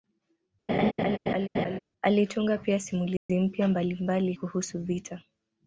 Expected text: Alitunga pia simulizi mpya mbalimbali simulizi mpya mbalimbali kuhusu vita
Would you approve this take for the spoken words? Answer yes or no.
no